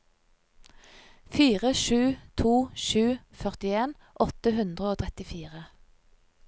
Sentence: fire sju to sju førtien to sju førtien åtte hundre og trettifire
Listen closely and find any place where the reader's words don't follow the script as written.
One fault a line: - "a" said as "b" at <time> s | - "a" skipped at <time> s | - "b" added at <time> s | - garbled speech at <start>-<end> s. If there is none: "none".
- "to sju førtien" skipped at 4.0 s